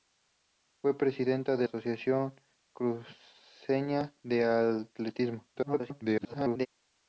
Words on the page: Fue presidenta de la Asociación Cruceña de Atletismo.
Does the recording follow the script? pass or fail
fail